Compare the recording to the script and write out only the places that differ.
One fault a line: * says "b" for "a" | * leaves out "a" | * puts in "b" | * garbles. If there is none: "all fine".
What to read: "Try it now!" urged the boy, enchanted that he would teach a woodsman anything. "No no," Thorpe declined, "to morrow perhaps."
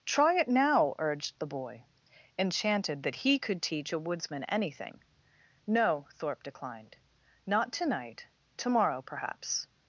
* says "could" for "would"
* leaves out "no"
* puts in "not to night"